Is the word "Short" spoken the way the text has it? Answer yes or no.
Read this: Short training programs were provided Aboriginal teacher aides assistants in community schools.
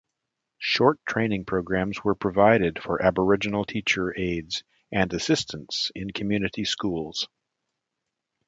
yes